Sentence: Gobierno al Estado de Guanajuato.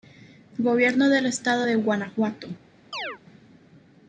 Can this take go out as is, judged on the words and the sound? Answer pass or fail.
fail